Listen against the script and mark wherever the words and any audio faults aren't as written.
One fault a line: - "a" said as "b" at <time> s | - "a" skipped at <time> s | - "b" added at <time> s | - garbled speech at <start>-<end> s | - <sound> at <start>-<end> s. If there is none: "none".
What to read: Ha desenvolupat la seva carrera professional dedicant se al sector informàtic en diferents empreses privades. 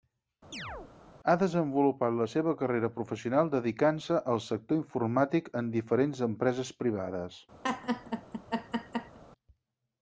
- chirp at 0.5-0.9 s
- laugh at 7.6-9.2 s